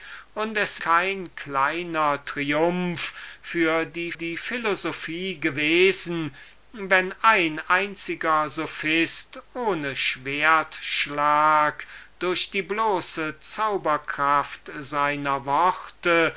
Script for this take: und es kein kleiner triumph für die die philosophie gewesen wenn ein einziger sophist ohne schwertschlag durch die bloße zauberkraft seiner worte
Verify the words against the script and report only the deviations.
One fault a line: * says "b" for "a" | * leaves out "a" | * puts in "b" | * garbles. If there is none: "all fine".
all fine